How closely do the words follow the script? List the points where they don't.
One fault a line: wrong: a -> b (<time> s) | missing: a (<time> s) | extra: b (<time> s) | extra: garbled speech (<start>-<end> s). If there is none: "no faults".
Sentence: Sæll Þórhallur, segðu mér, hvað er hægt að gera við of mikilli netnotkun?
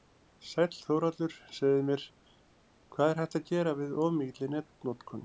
no faults